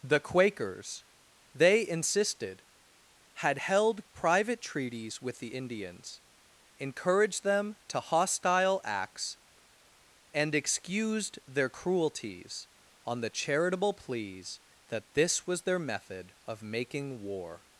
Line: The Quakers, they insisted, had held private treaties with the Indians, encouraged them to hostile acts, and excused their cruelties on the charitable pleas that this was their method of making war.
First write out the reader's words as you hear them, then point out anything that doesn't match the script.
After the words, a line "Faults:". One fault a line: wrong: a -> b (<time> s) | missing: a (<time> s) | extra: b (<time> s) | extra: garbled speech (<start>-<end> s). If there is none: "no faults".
The Quakers, they insisted, had held private treaties with the Indians, encouraged them to hostile acts, and excused their cruelties on the charitable pleas that this was their method of making war.
Faults:
no faults